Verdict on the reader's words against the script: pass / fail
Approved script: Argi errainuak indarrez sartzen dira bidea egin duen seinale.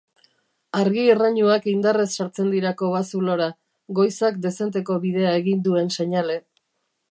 fail